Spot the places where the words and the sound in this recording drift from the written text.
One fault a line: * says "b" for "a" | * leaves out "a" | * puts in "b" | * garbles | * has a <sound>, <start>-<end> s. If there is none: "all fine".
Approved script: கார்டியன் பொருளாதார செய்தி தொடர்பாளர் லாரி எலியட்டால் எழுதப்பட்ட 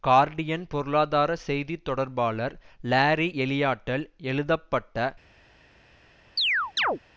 * has a chirp, 6.4-7.0 s